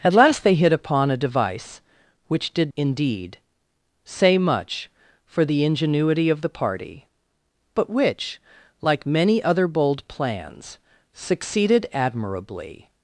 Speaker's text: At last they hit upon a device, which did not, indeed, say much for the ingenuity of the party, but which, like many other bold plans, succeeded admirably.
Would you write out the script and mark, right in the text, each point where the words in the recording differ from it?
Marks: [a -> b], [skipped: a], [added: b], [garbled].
At last they hit upon a device, which did [skipped: not,] indeed, say much for the ingenuity of the party, but which, like many other bold plans, succeeded admirably.